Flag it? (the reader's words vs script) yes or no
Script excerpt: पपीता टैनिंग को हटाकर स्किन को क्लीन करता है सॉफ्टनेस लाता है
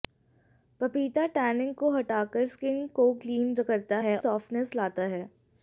no